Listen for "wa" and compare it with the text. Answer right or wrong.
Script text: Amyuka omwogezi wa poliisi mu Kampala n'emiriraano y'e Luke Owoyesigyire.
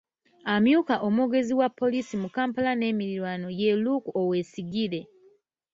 right